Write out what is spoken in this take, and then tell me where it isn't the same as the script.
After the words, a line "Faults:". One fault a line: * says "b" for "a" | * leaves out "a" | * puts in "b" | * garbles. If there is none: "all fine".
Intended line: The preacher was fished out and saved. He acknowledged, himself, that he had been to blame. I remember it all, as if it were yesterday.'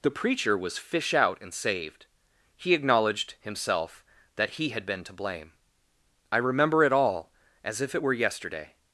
The preacher was fish out and saved. He acknowledged, himself, that he had been to blame. I remember it all, as if it were yesterday.'
Faults:
* says "fish" for "fished"